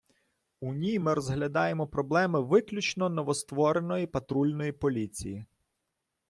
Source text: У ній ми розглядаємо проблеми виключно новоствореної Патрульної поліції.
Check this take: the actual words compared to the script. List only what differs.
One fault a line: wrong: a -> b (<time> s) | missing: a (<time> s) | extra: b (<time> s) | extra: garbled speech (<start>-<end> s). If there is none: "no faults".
no faults